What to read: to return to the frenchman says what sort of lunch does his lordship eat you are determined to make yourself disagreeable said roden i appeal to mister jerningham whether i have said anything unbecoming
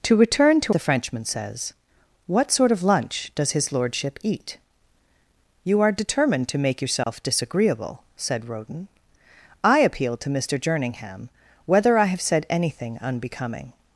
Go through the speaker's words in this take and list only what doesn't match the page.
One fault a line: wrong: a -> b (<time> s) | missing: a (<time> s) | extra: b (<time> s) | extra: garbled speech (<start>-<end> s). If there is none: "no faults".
no faults